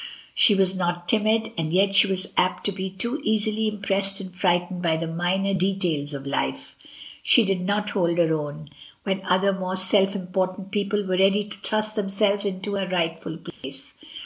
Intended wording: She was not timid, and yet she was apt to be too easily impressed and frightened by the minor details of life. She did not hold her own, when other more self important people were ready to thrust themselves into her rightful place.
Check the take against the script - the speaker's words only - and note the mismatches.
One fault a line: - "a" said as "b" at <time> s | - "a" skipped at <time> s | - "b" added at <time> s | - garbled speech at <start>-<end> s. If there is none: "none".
none